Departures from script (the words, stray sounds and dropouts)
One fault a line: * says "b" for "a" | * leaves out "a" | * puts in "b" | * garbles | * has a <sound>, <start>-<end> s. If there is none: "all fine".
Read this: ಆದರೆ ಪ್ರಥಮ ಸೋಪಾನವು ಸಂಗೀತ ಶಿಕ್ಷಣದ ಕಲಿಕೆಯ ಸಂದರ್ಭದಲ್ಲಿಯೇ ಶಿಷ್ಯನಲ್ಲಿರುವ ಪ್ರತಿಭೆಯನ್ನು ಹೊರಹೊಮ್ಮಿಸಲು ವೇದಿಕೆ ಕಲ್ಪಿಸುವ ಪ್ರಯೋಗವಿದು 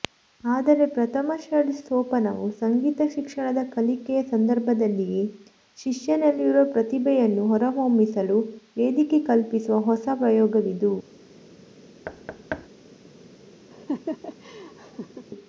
* puts in "ಷಡ್ಜ"
* puts in "ಹೊಸ"
* has a thud, 12.0-12.7 s
* has a laugh, 13.7-15.3 s